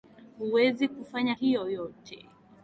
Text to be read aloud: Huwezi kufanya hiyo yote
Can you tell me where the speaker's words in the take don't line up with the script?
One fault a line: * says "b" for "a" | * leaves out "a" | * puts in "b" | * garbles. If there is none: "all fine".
all fine